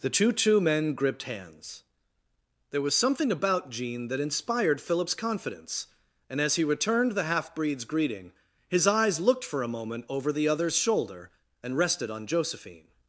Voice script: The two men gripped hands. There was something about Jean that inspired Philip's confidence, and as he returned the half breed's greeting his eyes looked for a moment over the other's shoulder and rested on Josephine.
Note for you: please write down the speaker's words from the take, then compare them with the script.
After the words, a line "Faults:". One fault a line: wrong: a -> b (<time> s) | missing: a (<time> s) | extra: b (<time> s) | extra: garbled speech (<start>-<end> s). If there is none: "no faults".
The two two men gripped hands. There was something about Jean that inspired Philip's confidence, and as he returned the half breed's greeting his eyes looked for a moment over the other's shoulder and rested on Josephine.
Faults:
extra: two (0.3 s)